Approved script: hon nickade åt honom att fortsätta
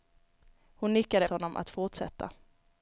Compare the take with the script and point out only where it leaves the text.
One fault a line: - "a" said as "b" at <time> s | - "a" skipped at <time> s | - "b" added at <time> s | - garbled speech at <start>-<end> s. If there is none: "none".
- "åt" skipped at 1.3 s